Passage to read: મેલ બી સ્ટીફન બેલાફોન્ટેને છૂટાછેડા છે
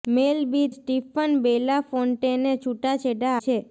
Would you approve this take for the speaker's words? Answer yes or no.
yes